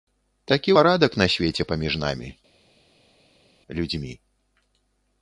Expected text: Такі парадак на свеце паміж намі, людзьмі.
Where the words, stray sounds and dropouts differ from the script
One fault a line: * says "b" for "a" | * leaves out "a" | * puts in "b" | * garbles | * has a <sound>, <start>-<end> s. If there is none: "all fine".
all fine